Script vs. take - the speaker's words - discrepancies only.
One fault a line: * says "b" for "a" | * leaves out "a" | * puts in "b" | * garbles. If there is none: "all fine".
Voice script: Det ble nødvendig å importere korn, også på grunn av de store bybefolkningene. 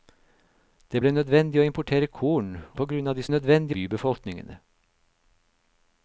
* leaves out "også"
* says "nødvendig" for "store"